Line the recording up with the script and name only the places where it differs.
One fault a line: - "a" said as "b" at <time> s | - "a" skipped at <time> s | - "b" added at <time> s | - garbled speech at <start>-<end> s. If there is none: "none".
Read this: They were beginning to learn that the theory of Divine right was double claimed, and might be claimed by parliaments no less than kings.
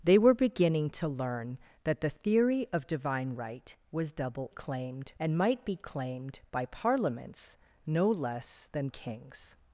none